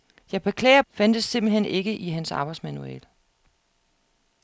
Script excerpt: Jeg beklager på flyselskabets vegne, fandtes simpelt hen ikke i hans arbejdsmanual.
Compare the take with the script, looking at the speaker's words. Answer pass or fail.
fail